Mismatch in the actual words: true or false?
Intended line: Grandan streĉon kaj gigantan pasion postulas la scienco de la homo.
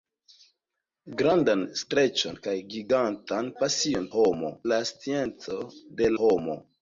true